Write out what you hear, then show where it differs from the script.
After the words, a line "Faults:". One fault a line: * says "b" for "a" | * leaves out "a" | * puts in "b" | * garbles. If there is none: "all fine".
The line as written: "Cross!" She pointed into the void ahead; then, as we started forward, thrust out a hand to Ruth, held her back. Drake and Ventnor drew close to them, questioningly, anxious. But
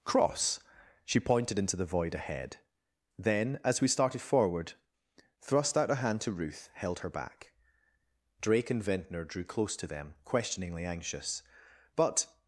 "Cross!" She pointed into the void ahead; then, as we started forward, thrust out a hand to Ruth, held her back. Drake and Ventnor drew close to them, questioningly, anxious. But
Faults:
all fine